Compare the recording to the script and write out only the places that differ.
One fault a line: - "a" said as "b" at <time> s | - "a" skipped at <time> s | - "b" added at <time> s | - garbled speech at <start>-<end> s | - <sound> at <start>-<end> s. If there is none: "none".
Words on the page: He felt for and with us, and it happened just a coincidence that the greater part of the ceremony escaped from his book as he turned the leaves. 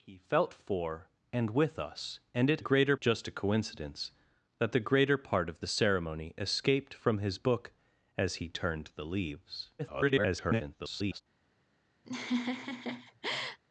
- "happened" said as "greater" at 2.6 s
- garbled speech at 9.8-11.2 s
- laugh at 12.0-13.6 s